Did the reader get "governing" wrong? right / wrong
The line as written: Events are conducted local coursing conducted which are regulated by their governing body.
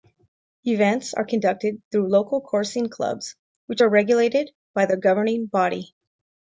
right